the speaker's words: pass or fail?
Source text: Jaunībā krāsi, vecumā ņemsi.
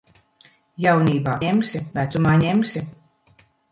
fail